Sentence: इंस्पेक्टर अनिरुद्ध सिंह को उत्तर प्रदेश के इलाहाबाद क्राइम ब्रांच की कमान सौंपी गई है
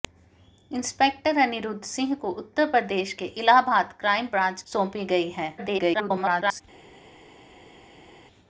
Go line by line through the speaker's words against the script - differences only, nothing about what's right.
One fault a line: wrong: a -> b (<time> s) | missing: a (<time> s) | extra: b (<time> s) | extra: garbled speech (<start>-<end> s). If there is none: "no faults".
missing: की कमान (4.6 s)
extra: garbled speech (5.6-6.6 s)